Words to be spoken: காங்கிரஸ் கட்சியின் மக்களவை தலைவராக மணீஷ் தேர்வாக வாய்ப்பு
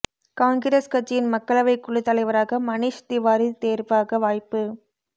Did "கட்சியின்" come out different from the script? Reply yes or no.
no